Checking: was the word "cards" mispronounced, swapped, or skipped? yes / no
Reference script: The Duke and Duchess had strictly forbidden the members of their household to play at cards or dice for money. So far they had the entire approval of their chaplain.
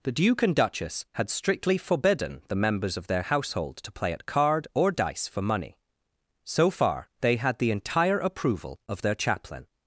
yes